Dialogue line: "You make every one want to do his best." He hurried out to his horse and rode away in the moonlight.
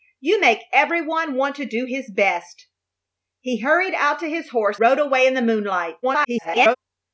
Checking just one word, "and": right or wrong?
wrong